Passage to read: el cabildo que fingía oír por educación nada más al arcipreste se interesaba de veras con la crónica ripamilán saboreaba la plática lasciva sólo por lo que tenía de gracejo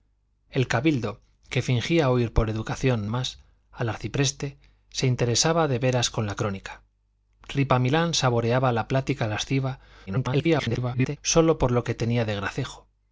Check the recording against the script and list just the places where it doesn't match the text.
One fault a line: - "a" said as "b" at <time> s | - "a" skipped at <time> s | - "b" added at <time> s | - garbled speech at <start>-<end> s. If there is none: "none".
- "nada" skipped at 3.1 s
- garbled speech at 10.1-11.2 s